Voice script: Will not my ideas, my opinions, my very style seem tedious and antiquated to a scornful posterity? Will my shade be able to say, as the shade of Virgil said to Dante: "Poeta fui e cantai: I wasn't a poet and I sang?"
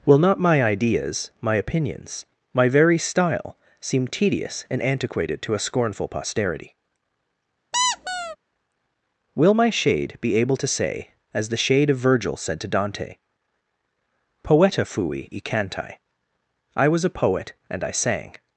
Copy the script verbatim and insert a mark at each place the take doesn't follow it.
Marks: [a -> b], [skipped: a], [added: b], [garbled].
Will not my ideas, my opinions, my very style seem tedious and antiquated to a scornful posterity? Will my shade be able to say, as the shade of Virgil said to Dante: "Poeta fui e cantai: I [wasn't -> was] a poet and I sang?"